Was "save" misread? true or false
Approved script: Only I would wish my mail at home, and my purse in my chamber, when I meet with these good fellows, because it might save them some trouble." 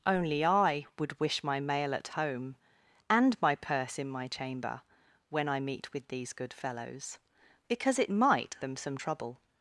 true